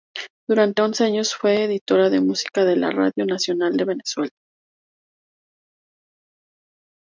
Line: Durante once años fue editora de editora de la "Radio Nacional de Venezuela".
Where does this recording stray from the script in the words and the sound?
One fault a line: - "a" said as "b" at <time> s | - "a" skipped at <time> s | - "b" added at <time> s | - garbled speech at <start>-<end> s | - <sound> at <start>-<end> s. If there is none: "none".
- "editora" said as "música" at 2.2 s